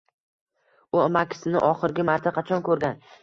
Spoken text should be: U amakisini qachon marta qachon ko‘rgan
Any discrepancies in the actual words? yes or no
yes